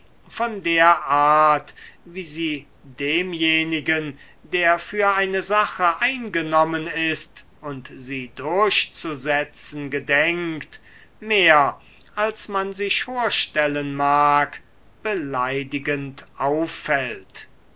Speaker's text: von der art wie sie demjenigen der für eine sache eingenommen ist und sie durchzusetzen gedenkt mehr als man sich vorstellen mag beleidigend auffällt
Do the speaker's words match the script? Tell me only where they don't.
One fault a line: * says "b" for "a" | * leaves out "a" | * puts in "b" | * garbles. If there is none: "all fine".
all fine